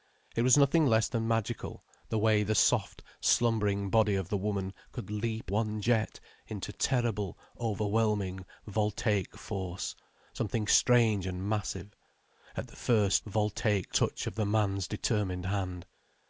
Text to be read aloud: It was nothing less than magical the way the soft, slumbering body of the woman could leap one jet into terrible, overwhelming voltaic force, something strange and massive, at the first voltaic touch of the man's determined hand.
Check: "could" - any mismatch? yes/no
no